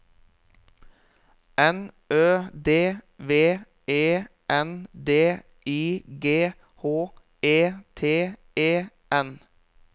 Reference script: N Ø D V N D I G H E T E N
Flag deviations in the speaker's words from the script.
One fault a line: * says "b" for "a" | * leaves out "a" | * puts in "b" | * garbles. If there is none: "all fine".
* puts in "E"